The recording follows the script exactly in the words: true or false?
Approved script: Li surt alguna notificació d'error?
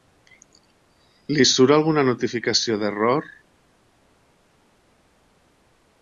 true